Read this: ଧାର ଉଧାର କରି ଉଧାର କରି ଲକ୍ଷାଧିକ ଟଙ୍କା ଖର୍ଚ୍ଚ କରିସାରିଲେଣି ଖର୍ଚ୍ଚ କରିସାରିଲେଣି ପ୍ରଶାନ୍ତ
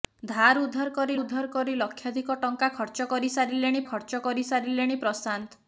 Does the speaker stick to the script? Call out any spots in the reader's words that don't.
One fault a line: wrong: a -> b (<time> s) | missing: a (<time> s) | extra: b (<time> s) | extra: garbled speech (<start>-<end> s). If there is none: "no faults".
no faults